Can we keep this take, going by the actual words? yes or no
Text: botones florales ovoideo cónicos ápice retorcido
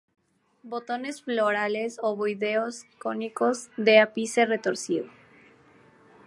no